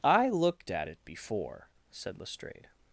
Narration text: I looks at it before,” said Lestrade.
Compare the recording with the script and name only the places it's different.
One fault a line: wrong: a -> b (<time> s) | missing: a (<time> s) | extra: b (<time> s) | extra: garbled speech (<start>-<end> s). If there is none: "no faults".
wrong: looks -> looked (0.3 s)